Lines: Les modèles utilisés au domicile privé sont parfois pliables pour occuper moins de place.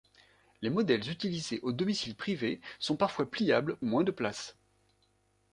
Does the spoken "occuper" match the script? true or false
false